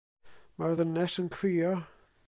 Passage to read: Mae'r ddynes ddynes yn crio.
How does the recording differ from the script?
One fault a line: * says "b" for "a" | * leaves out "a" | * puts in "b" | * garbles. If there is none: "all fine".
* leaves out "ddynes"